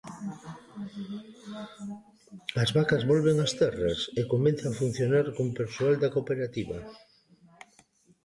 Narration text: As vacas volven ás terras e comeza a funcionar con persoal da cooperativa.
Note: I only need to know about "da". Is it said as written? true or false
true